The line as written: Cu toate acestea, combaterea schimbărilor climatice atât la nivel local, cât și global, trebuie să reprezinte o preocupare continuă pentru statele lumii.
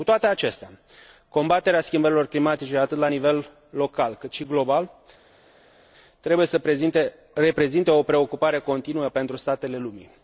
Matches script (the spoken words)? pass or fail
pass